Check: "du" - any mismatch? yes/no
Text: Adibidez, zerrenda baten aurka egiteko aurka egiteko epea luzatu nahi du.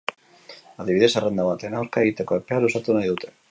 yes